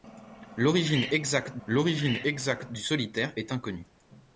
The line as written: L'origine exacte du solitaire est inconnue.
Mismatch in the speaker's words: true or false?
true